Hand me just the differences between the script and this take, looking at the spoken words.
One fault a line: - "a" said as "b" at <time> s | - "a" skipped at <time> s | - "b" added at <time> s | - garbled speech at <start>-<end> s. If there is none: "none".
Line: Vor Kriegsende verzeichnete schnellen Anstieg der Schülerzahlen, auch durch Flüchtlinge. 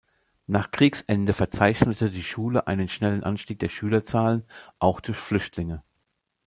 - "Vor" said as "Nach" at 0.5 s
- "die Schule einen" added at 2.1 s